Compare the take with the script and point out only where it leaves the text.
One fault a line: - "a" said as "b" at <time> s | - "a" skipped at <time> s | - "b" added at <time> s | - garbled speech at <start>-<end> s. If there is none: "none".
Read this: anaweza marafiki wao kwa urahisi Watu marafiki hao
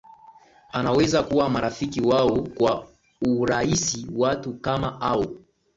- "kuwa" added at 1.2 s
- "marafiki" said as "kama" at 4.5 s